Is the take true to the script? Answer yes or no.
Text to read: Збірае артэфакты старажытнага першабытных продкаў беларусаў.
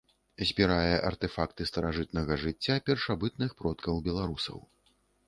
no